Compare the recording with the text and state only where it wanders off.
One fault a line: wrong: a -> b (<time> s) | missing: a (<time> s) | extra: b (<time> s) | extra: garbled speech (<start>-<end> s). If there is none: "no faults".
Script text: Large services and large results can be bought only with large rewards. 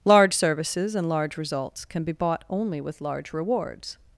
no faults